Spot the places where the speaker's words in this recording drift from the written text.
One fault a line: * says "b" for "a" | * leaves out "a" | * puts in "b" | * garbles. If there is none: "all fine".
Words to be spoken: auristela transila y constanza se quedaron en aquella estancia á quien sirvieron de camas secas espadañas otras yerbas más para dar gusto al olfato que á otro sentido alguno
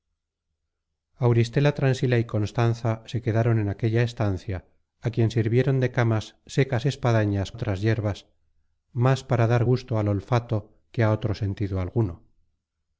all fine